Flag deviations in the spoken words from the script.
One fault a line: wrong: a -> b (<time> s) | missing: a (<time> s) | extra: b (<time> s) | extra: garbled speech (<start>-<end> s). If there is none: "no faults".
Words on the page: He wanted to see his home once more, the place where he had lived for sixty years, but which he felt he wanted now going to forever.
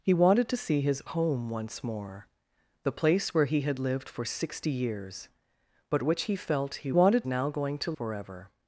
no faults